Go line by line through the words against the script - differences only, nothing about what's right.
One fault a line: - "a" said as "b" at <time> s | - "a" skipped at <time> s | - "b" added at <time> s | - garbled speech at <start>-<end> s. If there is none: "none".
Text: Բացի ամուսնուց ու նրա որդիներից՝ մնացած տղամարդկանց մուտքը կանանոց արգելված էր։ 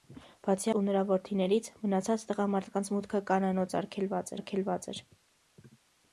- "ամուսնուց" skipped at 0.7 s
- "արգելված" added at 4.4 s